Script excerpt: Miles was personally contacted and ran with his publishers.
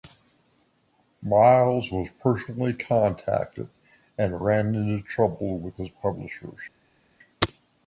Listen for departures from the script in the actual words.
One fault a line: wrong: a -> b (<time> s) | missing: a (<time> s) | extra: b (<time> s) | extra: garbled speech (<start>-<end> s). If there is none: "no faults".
extra: into trouble (4.7 s)